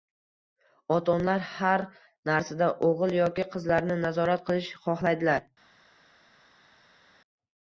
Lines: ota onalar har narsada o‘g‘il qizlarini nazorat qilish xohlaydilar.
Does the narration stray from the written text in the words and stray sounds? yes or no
yes